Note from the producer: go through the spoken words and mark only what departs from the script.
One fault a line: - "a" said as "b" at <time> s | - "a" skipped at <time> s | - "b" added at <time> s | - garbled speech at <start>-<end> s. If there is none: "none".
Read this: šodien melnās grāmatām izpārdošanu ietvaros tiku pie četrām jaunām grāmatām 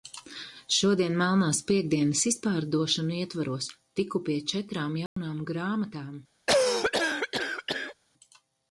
- "grāmatām" said as "piektdienas" at 1.7 s